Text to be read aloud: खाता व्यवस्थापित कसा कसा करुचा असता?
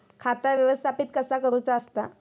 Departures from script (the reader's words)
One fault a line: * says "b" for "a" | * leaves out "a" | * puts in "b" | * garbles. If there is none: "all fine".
* leaves out "कसा"